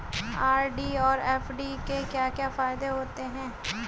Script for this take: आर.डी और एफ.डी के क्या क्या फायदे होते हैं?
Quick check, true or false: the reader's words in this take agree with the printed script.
true